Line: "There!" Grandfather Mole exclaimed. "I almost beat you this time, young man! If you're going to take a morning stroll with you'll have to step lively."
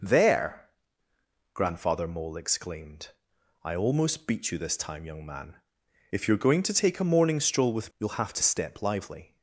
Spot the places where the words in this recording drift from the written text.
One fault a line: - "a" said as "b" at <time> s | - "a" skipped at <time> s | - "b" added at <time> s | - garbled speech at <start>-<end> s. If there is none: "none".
none